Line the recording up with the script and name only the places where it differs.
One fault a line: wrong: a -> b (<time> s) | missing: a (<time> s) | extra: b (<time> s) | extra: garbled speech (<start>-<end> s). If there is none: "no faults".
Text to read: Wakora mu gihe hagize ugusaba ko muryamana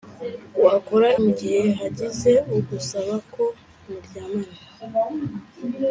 no faults